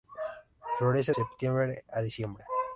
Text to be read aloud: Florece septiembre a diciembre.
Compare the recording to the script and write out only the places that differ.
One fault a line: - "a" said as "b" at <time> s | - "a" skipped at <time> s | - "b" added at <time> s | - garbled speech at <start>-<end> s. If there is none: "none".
none